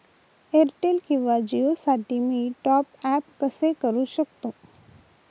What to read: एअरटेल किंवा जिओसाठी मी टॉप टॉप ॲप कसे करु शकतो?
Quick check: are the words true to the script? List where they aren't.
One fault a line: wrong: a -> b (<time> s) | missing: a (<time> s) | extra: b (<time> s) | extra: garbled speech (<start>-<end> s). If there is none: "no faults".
missing: टॉप (2.9 s)